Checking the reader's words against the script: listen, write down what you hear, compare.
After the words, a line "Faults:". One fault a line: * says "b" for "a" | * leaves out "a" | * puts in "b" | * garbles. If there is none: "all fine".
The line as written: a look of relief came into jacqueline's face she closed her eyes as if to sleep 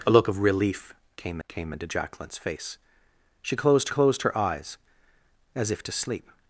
a look of relief came came into jacqueline's face she closed closed her eyes as if to sleep
Faults:
* puts in "came"
* puts in "closed"